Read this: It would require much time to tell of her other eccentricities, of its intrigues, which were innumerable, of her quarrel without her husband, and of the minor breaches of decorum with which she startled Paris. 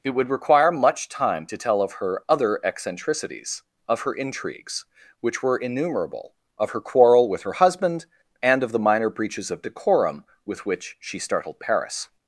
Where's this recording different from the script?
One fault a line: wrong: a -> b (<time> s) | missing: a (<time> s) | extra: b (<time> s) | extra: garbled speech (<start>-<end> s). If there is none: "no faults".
wrong: its -> her (4.0 s)
wrong: without -> with (7.3 s)